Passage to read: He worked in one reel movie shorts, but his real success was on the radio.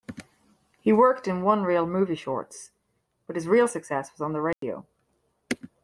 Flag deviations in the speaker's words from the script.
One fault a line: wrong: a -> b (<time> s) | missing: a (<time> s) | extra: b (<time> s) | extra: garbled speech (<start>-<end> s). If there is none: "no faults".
no faults